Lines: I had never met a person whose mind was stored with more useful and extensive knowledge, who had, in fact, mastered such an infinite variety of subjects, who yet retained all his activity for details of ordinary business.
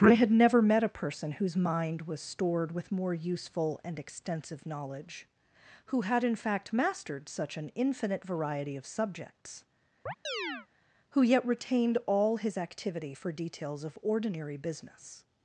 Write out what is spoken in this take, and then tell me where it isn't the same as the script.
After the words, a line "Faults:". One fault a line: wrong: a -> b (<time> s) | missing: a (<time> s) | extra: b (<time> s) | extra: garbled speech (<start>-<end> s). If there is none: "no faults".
I had never met a person whose mind was stored with more useful and extensive knowledge, who had, in fact, mastered such an infinite variety of subjects, who yet retained all his activity for details of ordinary business.
Faults:
no faults